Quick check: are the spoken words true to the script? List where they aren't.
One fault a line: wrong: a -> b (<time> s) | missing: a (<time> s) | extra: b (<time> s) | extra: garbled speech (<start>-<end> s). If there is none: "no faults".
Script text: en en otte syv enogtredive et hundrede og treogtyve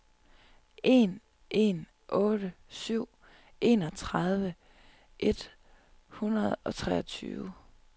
no faults